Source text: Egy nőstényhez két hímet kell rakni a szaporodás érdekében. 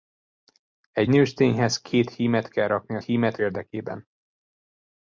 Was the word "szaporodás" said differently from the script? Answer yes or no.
yes